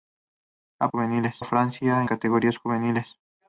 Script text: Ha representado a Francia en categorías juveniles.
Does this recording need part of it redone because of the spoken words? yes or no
yes